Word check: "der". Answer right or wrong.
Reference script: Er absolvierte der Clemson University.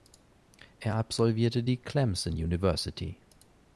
wrong